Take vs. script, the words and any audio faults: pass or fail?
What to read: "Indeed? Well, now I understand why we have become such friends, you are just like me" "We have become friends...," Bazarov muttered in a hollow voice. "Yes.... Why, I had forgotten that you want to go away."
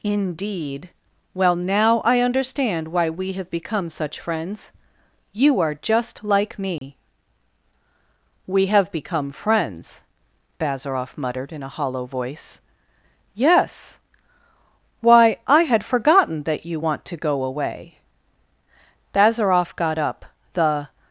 fail